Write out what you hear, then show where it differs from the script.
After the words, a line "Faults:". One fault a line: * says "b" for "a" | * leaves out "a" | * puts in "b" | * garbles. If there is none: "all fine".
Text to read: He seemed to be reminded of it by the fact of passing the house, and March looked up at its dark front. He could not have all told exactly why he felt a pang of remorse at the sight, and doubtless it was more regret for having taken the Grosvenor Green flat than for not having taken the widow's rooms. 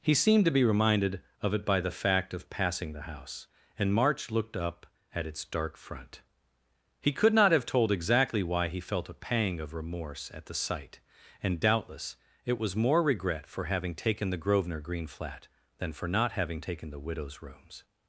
He seemed to be reminded of it by the fact of passing the house, and March looked up at its dark front. He could not have told exactly why he felt a pang of remorse at the sight, and doubtless it was more regret for having taken the Grosvenor Green flat than for not having taken the widow's rooms.
Faults:
* leaves out "all"